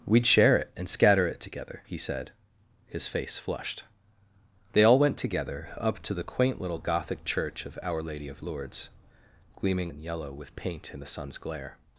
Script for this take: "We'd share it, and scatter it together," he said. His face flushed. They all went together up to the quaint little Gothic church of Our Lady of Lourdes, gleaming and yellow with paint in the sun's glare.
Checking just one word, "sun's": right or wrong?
right